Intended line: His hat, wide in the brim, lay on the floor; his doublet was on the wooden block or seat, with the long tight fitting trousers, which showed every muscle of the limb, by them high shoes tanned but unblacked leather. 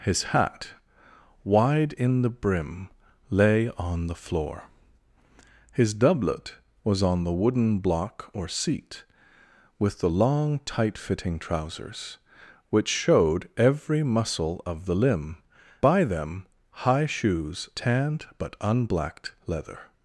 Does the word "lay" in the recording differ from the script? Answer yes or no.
no